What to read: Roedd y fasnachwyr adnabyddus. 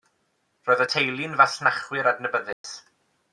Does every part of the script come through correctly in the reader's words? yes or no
no